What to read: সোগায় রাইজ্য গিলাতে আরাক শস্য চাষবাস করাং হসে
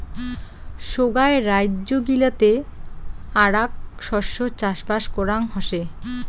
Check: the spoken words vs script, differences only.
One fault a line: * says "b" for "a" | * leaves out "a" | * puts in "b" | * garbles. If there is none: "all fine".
all fine